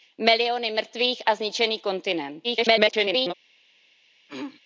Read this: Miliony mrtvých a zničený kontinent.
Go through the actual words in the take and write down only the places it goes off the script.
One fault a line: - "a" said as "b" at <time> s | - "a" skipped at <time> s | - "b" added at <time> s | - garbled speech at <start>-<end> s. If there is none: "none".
- garbled speech at 2.4-3.3 s